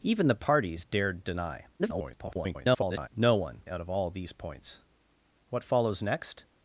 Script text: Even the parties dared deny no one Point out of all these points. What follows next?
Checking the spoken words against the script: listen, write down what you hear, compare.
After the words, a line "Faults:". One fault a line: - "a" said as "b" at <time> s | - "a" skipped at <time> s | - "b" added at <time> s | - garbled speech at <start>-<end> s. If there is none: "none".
Even the parties dared deny [garbled] no one Out of all these points. What follows next?
Faults:
- garbled speech at 1.8-3.1 s
- "Point" skipped at 3.6 s